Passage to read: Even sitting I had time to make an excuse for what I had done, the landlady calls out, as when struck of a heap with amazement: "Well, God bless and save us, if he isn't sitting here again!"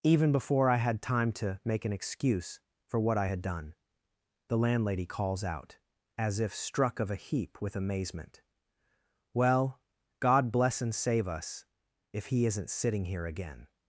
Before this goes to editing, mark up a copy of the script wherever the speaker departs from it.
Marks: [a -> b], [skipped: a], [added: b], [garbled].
Even [sitting -> before] I had time to make an excuse for what I had done, the landlady calls out, as [when -> if] struck of a heap with amazement: "Well, God bless and save us, if he isn't sitting here again!"